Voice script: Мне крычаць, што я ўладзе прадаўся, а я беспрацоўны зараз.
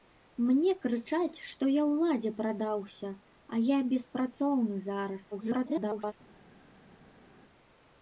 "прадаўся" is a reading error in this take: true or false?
false